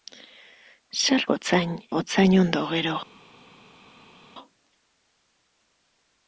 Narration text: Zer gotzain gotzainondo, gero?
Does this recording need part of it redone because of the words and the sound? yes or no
no